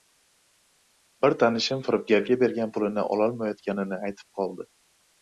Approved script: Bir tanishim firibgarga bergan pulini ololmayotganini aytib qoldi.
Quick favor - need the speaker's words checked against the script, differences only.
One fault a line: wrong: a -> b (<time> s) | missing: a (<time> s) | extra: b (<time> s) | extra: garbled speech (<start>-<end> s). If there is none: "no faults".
no faults